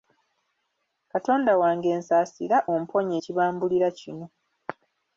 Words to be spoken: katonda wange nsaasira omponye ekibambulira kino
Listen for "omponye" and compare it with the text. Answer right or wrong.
right